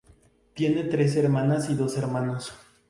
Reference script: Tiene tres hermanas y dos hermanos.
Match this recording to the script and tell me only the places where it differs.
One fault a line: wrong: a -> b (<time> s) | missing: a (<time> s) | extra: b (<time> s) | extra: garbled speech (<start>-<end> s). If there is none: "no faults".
no faults